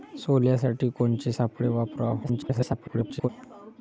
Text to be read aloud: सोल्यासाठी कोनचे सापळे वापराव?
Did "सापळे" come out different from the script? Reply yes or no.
no